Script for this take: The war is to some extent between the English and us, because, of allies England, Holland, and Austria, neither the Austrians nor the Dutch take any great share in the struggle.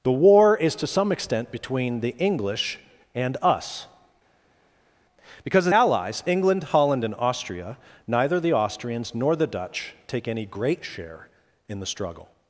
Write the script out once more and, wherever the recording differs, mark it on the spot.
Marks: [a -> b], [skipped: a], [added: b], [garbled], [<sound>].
The war is to some extent between the English and us, because, of allies England, Holland, and Austria, neither the Austrians nor the Dutch take any great share in the struggle.